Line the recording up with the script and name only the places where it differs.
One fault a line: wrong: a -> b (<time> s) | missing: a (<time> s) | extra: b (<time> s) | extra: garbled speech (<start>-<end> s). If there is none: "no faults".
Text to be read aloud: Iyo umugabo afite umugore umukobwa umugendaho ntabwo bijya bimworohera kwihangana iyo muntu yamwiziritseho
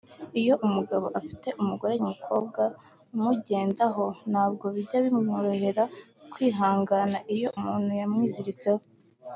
no faults